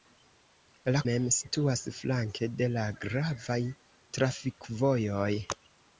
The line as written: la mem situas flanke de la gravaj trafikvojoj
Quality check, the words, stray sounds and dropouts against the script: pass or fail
pass